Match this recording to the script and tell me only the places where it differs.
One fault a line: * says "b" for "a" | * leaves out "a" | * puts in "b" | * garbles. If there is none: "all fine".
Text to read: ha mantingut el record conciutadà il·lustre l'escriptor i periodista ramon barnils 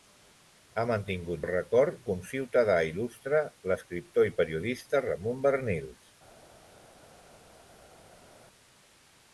all fine